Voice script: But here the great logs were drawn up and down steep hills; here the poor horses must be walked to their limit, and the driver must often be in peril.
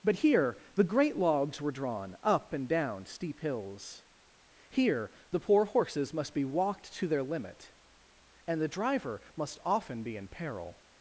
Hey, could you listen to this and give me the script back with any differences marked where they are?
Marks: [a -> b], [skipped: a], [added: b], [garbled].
But here the great logs were drawn up and down steep hills; here the poor horses must be walked to their limit, and the driver must often be in peril.